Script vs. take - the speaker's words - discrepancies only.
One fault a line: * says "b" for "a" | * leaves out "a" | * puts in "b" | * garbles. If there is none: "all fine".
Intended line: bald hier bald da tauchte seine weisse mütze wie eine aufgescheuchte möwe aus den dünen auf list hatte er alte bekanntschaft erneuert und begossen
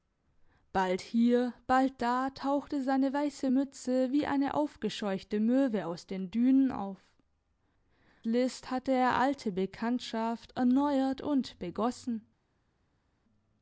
all fine